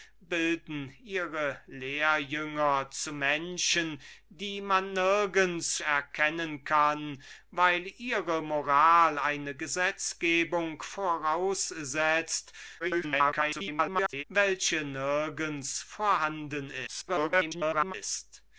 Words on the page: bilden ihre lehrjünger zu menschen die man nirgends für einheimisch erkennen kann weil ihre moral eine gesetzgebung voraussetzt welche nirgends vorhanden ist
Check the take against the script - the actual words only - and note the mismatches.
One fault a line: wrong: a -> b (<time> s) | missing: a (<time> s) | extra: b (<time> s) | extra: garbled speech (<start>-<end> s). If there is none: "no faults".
missing: für einheimisch (5.8 s)
extra: garbled speech (12.8-14.2 s)
extra: garbled speech (16.9-17.9 s)